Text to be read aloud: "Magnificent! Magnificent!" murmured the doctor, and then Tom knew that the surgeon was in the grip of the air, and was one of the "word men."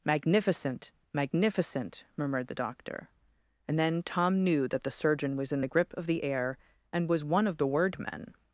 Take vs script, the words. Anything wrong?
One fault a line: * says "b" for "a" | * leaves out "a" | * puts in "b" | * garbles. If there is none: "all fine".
all fine